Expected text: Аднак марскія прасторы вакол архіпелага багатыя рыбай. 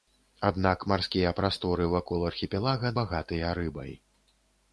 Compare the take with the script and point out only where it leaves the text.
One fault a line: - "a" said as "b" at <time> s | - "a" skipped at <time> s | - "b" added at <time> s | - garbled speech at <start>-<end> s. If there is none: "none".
none